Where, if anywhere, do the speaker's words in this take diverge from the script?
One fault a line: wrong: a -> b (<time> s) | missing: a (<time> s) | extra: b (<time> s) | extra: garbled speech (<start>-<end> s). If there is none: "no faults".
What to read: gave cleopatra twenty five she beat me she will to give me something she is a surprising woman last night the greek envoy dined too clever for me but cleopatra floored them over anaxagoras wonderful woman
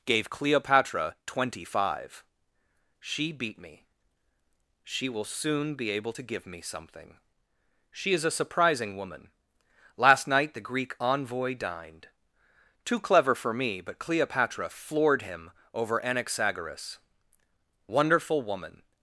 extra: soon be able (5.2 s)
wrong: them -> him (15.2 s)